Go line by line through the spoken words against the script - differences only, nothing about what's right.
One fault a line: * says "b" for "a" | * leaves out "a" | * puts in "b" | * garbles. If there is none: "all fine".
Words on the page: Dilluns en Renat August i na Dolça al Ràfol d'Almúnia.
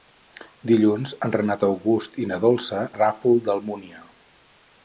all fine